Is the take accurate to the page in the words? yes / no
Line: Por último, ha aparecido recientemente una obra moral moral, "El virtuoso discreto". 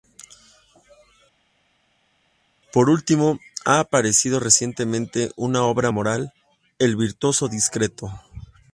no